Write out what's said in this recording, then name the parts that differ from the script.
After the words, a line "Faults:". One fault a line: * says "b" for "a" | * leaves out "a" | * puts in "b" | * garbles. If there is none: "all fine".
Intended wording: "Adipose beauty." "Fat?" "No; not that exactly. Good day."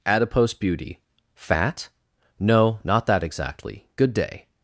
"Adipose beauty." "Fat?" "No; not that exactly. Good day."
Faults:
all fine